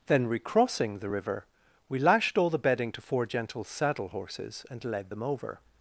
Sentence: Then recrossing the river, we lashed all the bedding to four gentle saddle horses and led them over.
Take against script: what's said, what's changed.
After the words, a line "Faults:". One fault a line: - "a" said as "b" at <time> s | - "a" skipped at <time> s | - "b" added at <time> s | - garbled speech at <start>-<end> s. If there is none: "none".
Then recrossing the river, we lashed all the bedding to four gentle saddle horses and led them over.
Faults:
none